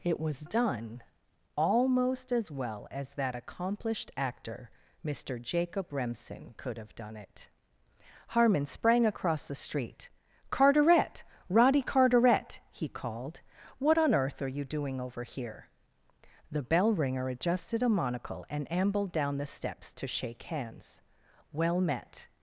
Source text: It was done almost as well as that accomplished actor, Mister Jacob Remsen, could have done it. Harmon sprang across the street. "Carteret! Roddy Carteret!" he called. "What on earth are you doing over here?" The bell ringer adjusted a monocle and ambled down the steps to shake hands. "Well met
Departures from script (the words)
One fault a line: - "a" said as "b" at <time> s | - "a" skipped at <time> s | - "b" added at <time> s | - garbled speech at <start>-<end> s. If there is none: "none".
none